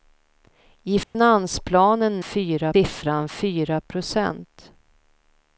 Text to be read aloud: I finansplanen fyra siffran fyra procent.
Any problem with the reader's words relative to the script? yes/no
no